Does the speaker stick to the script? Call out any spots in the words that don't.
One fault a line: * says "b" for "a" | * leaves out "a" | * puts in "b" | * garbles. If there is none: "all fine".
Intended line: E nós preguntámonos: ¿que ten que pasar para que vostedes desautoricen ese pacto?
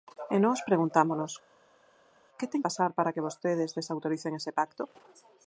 * leaves out "que"